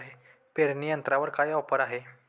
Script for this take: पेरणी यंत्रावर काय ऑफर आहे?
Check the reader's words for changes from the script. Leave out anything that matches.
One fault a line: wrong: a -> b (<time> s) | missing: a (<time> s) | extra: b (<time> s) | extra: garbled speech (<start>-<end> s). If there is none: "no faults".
no faults